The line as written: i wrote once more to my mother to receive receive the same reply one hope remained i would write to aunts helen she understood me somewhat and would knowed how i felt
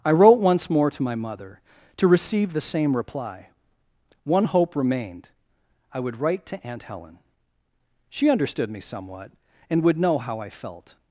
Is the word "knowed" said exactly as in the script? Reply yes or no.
no